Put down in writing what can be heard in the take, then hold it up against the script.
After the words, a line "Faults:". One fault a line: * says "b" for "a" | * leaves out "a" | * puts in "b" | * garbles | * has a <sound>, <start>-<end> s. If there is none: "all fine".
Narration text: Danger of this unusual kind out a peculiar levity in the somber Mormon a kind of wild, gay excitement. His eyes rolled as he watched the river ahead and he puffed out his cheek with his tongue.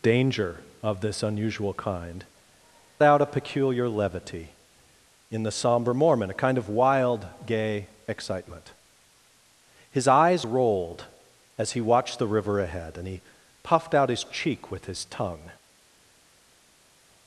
Danger of this unusual kind out a peculiar levity in the somber Mormon a kind of wild, gay excitement. His eyes rolled as he watched the river ahead and he puffed out his cheek with his tongue.
Faults:
all fine